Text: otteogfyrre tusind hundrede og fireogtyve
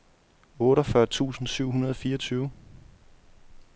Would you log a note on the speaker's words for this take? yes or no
yes